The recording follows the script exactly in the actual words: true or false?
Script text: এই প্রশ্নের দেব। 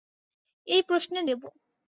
true